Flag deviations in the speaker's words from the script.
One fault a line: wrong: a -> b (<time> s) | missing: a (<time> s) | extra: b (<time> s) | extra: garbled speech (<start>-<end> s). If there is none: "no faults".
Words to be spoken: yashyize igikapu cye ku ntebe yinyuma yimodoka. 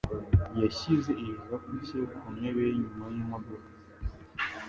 no faults